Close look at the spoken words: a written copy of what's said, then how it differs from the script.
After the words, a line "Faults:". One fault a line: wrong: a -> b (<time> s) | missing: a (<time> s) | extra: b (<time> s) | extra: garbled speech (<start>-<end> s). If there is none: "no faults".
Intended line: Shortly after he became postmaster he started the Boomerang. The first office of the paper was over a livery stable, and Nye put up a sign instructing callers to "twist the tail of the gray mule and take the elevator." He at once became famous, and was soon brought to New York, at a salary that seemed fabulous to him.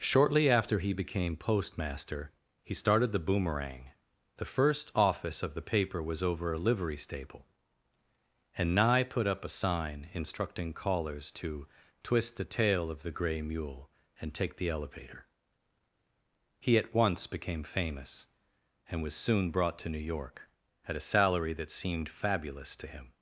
Shortly after he became postmaster he started the Boomerang. The first office of the paper was over a livery stable, and Nye put up a sign instructing callers to "twist the tail of the gray mule and take the elevator." He at once became famous, and was soon brought to New York, at a salary that seemed fabulous to him.
Faults:
no faults